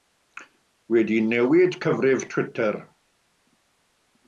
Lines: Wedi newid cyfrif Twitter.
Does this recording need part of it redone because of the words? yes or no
no